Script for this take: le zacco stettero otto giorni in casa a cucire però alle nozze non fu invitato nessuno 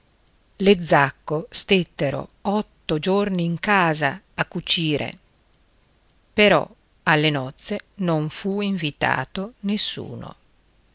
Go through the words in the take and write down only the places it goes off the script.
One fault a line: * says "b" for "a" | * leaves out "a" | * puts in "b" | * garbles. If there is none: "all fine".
all fine